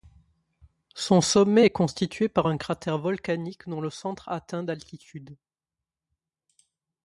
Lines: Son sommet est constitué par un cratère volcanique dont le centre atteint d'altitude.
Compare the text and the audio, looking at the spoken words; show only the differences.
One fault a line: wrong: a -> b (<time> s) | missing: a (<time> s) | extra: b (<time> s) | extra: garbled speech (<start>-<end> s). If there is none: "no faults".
no faults